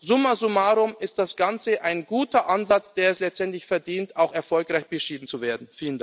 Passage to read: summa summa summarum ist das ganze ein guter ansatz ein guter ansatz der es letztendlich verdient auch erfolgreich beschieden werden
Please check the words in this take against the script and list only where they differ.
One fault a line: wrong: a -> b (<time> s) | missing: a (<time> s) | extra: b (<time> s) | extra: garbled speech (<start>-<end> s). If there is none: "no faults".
missing: summa (0.3 s)
missing: ein guter ansatz (3.0 s)
extra: zu (5.2 s)